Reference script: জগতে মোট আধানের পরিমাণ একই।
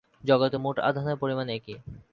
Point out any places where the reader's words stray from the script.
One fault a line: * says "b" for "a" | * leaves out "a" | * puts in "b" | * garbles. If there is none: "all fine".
all fine